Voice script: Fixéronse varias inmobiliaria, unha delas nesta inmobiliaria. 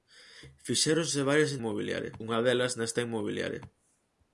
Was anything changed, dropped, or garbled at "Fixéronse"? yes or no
no